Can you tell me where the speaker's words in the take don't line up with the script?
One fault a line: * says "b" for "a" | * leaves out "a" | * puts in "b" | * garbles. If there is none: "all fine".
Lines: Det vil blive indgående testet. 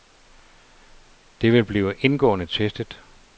all fine